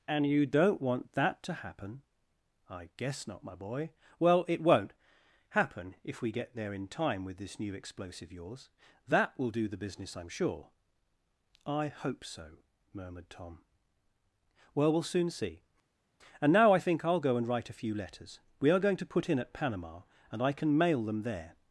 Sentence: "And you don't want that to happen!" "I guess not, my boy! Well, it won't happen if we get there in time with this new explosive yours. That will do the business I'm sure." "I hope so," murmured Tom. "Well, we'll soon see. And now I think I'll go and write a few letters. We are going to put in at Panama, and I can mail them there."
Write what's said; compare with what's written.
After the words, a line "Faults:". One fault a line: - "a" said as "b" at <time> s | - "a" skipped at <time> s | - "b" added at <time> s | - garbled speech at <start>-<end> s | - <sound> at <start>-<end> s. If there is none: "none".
"And you don't want that to happen!" "I guess not, my boy! Well, it won't happen if we get there in time with this new explosive yours. That will do the business I'm sure." "I hope so," murmured Tom. "Well, we'll soon see. And now I think I'll go and write a few letters. We are going to put in at Panama, and I can mail them there."
Faults:
none